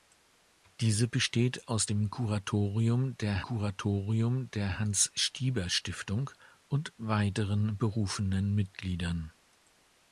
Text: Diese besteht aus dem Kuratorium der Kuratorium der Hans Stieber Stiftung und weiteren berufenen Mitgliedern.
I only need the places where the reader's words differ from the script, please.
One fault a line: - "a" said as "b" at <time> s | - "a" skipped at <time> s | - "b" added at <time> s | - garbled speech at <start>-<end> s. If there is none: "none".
none